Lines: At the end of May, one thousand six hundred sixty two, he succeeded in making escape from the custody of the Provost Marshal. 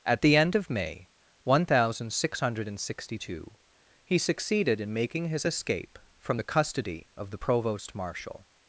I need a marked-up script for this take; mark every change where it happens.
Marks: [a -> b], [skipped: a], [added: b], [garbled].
At the end of May, one thousand six hundred sixty two, he succeeded in making [added: his] escape from the custody of the Provost Marshal.